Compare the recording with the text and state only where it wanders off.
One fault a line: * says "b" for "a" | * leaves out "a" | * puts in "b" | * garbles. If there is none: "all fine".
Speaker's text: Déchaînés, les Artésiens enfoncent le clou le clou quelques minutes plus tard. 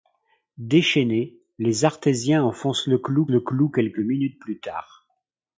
all fine